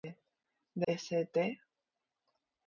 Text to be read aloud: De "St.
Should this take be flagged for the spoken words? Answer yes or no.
no